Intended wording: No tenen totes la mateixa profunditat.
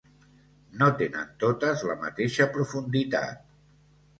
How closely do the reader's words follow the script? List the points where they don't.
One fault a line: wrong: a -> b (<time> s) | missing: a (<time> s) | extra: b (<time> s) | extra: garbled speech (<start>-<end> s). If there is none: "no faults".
no faults